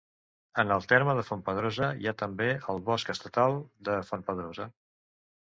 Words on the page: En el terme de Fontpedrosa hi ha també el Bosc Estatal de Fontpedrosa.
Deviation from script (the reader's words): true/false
false